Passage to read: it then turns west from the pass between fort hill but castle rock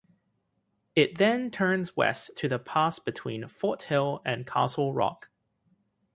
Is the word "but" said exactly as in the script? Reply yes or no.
no